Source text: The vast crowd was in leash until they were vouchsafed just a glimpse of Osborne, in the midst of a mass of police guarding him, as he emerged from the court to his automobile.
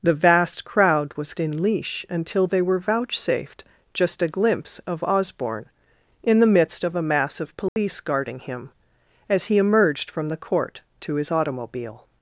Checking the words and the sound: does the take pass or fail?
fail